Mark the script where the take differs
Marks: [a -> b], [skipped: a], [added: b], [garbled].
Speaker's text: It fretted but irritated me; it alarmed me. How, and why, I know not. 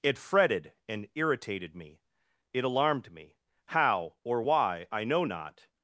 It fretted [but -> and] irritated me; it alarmed me. How, [and -> or] why, I know not.